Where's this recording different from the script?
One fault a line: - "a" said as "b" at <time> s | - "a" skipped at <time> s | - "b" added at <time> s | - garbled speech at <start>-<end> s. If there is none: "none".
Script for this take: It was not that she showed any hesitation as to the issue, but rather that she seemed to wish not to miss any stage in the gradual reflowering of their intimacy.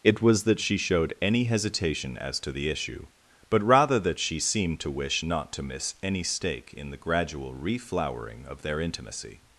- "not" skipped at 0.5 s
- "stage" said as "stake" at 6.2 s